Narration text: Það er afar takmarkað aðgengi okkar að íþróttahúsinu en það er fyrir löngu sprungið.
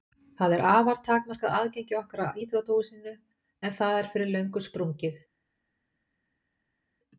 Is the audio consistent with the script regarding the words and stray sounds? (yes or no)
yes